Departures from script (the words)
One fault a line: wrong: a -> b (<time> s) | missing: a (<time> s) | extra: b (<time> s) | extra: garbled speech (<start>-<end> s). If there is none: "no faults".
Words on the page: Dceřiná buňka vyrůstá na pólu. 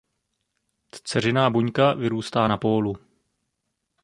no faults